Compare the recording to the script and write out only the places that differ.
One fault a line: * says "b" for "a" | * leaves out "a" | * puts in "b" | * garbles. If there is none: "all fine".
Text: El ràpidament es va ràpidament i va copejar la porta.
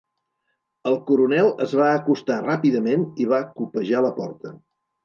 * says "coronel" for "ràpidament"
* puts in "acostar"